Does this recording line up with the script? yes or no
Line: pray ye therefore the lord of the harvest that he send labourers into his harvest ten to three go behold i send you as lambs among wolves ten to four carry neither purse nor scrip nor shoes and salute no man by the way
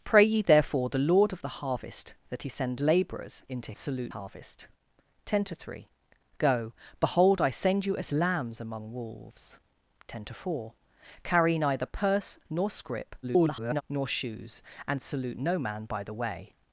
no